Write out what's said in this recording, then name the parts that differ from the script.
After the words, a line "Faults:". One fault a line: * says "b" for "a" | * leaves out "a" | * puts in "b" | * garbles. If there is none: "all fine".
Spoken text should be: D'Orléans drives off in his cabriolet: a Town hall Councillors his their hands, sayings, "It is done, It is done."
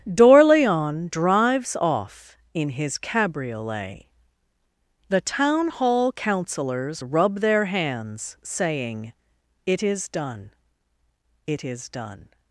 D'Orléans drives off in his cabriolet: the Town hall Councillors rub their hands, saying, "It is done, It is done."
Faults:
* says "the" for "a"
* says "rub" for "his"
* says "saying" for "sayings"